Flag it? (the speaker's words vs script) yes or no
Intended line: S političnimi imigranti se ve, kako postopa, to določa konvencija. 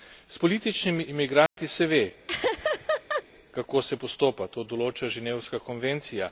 yes